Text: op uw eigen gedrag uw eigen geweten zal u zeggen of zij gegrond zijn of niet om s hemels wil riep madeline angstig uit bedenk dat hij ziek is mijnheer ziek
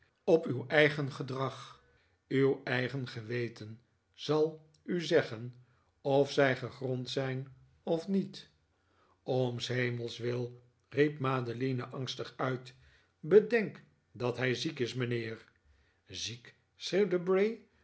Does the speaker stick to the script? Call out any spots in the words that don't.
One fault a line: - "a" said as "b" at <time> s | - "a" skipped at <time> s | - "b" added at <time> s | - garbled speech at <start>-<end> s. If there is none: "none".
none